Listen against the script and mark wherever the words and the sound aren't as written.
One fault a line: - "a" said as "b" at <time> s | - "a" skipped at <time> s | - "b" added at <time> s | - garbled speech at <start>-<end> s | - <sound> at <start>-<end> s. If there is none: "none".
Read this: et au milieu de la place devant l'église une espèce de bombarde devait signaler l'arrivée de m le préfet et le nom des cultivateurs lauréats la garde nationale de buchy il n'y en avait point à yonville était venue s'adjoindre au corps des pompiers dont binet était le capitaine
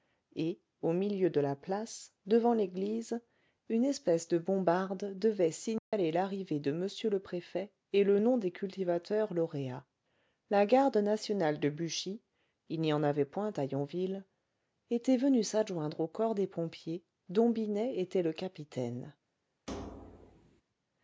- dropout at 5.8-5.9 s
- thud at 19.7-20.6 s